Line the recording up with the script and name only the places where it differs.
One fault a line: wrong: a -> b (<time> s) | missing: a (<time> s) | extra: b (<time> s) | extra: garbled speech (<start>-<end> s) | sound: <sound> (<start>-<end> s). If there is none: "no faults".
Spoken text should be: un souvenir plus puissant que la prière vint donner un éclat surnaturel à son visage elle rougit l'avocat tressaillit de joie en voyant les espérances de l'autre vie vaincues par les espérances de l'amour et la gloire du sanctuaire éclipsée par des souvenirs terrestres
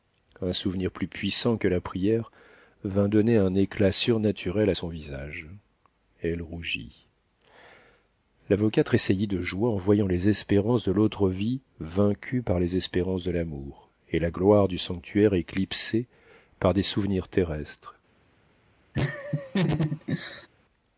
sound: laugh (18.9-20.5 s)